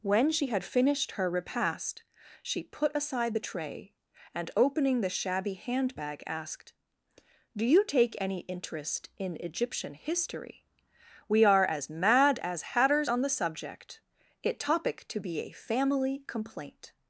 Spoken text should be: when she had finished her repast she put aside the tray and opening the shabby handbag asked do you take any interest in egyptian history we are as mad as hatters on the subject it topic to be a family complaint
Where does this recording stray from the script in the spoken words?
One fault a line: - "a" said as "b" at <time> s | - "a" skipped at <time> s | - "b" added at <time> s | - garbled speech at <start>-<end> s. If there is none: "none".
none